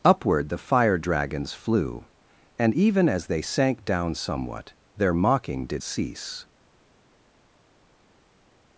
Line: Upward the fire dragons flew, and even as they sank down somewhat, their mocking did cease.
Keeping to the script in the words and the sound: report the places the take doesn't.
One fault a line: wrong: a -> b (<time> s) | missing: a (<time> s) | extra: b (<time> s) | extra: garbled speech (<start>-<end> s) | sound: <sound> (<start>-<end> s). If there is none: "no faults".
no faults